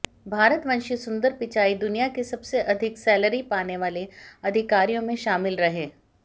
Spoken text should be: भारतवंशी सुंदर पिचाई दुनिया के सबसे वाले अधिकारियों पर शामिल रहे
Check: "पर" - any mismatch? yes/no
yes